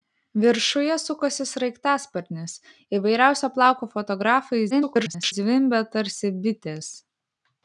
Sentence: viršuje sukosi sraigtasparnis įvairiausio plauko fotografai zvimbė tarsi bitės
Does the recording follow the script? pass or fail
fail